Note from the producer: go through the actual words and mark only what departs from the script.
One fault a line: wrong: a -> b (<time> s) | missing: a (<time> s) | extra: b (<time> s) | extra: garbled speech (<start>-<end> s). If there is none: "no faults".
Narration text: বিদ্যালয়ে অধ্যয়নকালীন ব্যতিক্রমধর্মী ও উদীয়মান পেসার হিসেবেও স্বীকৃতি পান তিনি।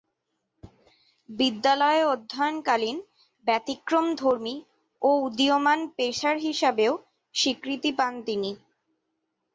no faults